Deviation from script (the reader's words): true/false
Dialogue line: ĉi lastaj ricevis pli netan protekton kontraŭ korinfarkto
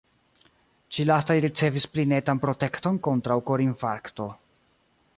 false